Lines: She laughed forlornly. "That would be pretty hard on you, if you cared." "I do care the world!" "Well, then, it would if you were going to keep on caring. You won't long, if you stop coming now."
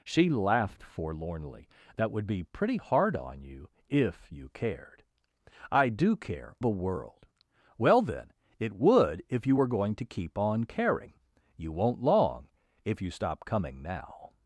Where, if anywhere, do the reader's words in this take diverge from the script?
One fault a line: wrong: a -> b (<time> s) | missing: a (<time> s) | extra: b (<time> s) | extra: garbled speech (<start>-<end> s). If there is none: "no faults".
no faults